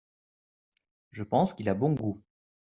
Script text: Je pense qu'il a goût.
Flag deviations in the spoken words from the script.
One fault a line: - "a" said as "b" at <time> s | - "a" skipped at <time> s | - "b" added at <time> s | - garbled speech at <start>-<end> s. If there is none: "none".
- "bon" added at 1.7 s